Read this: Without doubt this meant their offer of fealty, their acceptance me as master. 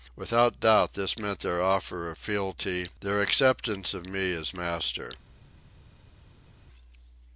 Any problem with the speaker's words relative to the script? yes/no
yes